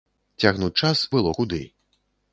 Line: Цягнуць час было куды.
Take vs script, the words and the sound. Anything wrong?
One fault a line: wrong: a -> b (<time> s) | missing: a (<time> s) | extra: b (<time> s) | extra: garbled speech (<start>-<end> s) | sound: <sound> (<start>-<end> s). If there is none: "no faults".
no faults